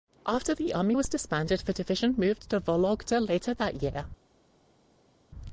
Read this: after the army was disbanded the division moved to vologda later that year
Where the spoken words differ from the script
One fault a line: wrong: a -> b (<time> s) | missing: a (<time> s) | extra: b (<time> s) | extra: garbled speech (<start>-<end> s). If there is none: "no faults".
no faults